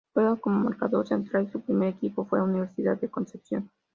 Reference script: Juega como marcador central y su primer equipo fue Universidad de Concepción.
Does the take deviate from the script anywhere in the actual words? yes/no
no